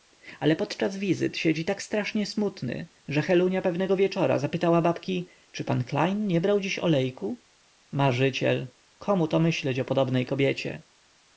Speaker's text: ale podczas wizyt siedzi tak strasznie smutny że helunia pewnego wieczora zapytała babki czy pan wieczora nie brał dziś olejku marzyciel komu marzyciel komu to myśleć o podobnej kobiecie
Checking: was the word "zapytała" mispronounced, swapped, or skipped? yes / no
no